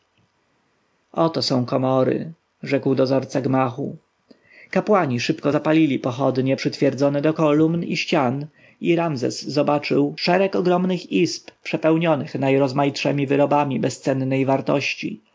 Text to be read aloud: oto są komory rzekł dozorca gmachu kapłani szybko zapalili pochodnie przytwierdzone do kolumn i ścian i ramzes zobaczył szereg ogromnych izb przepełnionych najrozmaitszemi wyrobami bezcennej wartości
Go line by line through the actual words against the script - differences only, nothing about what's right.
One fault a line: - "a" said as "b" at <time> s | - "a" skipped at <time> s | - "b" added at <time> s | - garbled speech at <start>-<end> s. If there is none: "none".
none